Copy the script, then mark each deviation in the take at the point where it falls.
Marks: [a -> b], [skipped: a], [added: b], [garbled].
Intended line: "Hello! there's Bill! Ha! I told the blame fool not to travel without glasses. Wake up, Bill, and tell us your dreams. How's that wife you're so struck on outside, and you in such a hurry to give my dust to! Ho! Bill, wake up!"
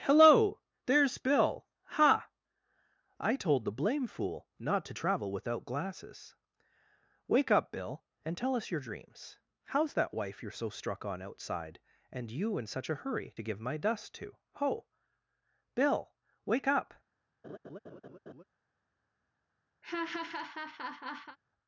"Hello! there's Bill! Ha! I told the blame fool not to travel without glasses. Wake up, Bill, and tell us your dreams. How's that wife you're so struck on outside, and you in such a hurry to give my dust to! Ho! Bill, wake up!"